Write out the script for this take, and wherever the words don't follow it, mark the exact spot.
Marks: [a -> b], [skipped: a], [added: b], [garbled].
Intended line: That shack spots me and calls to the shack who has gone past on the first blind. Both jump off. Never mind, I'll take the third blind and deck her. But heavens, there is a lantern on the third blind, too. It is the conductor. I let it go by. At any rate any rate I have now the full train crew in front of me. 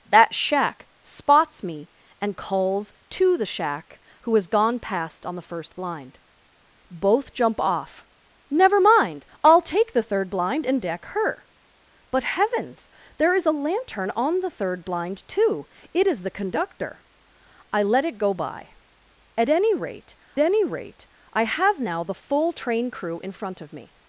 That shack spots me and calls to the shack who has gone past on the first blind. Both jump off. Never mind, I'll take the third blind and deck her. But heavens, there is a lantern on the third blind, too. It is the conductor. I let it go by. At any rate any rate I have now the full train crew in front of me.